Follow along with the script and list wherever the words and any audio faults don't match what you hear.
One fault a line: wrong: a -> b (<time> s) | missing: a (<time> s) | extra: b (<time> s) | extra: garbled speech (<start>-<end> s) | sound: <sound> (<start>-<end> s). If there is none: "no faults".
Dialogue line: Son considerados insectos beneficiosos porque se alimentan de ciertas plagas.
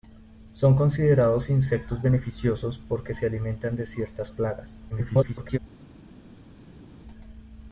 extra: garbled speech (4.9-5.6 s)